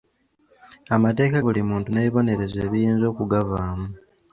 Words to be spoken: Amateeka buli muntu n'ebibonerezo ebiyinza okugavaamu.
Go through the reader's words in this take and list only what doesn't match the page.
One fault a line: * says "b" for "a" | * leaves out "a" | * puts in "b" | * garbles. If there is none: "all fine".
all fine